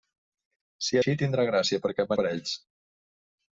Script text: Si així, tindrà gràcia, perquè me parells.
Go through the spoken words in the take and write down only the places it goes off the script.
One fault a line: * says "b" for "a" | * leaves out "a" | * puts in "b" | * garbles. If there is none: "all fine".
all fine